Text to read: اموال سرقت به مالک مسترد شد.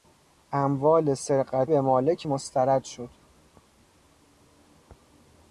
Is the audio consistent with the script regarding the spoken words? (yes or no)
yes